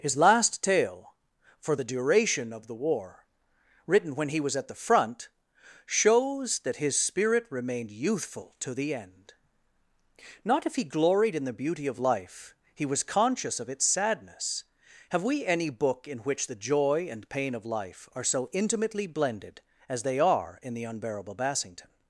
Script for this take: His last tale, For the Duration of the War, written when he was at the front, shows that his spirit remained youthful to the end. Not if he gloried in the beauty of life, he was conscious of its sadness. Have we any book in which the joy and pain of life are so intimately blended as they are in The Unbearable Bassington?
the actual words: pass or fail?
pass